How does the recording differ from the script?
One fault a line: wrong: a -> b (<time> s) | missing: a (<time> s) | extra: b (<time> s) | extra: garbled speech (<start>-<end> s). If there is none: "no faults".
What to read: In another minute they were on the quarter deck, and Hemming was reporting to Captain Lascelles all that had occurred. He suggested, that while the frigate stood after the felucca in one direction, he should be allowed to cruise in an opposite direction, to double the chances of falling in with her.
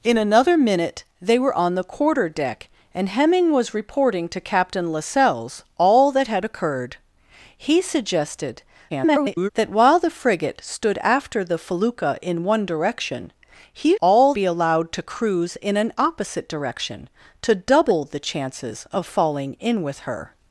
extra: garbled speech (8.9-9.5 s)
wrong: should -> all (14.0 s)